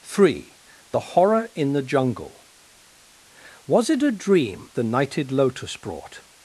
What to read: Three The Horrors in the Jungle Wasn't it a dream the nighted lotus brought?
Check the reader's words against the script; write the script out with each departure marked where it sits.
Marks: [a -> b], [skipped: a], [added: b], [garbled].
Three The [Horrors -> Horror] in the Jungle [Wasn't -> Was] it a dream the nighted lotus brought?